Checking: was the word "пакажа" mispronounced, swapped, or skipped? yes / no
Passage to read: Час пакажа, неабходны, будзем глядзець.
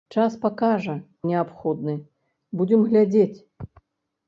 no